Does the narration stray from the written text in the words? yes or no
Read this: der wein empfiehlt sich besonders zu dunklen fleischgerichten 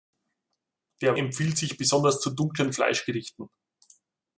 yes